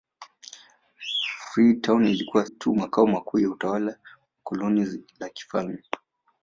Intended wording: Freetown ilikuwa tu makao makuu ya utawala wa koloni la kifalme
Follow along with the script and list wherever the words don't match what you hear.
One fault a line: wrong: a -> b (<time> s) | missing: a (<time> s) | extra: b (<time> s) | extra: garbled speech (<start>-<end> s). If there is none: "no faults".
no faults